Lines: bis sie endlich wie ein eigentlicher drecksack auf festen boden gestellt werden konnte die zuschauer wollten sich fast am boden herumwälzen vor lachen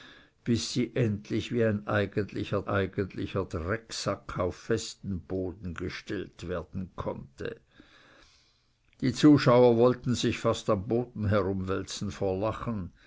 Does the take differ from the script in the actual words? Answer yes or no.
yes